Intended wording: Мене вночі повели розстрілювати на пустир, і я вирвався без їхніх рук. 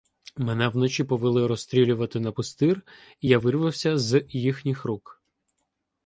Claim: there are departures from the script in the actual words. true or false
true